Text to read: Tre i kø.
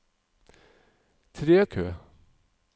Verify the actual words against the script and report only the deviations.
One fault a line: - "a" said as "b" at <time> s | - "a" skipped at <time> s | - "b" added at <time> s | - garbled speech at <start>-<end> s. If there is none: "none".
none